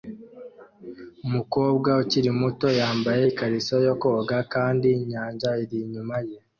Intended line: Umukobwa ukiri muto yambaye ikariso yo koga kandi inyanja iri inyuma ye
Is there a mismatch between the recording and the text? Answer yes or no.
no